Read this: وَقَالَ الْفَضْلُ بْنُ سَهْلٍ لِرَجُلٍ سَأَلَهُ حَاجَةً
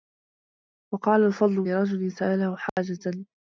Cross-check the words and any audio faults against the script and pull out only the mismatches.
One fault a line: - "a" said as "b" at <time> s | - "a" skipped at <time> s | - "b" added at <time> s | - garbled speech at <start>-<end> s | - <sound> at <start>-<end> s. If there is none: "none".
- "بْنُ سَهْلٍ" skipped at 1.6 s
- dropout at 2.7-2.8 s